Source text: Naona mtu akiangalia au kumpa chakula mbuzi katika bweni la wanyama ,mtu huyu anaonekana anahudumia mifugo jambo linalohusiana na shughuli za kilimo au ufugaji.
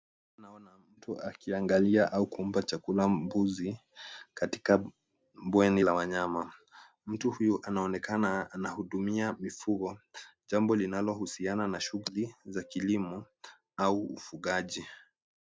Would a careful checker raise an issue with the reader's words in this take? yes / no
no